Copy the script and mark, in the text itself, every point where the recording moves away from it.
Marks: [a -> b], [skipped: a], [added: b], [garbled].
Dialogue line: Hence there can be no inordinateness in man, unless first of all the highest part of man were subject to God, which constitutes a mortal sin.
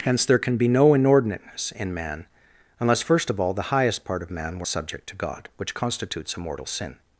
Hence there can be no inordinateness in man, unless first of all the highest part of man were subject to God, which constitutes a mortal sin.